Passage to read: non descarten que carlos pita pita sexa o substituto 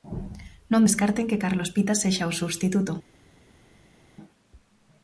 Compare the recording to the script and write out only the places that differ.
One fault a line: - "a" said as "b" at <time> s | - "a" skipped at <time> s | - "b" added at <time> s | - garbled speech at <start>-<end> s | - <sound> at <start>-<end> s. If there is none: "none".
- "pita" skipped at 1.9 s